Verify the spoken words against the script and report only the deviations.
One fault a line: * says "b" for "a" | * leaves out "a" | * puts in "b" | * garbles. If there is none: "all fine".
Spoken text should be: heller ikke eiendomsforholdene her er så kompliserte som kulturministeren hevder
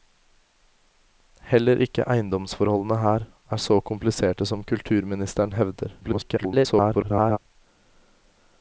* garbles